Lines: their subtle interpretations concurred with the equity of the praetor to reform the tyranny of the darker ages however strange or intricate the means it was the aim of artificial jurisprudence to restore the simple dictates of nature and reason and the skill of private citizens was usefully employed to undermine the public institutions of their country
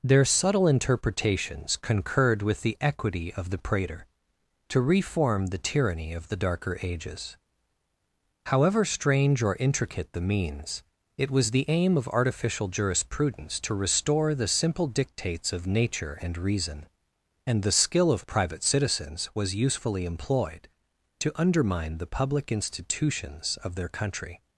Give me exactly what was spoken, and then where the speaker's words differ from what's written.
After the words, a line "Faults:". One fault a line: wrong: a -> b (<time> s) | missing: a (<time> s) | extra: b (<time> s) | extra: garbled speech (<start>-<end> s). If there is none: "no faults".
their subtle interpretations concurred with the equity of the praetor to reform the tyranny of the darker ages however strange or intricate the means it was the aim of artificial jurisprudence to restore the simple dictates of nature and reason and the skill of private citizens was usefully employed to undermine the public institutions of their country
Faults:
no faults